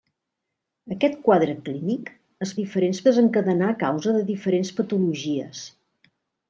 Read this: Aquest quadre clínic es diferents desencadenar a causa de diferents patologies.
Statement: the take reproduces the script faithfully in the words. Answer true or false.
true